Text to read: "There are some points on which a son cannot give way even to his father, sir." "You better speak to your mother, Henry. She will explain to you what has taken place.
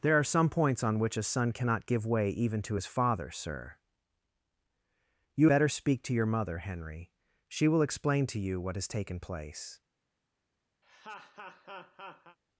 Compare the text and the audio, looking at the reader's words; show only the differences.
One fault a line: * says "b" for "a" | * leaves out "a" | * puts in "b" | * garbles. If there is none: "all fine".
all fine